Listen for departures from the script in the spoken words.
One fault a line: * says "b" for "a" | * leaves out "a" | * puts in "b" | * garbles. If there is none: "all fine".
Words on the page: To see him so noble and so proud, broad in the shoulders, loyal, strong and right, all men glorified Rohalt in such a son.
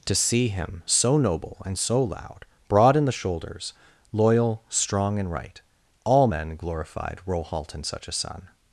* says "loud" for "proud"